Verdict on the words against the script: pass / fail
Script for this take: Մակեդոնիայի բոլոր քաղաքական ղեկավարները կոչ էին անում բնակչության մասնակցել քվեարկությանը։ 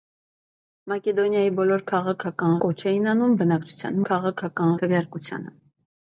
fail